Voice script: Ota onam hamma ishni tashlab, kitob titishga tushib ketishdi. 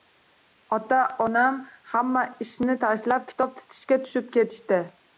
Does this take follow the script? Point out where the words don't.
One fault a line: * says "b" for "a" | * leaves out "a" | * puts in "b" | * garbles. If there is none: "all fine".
all fine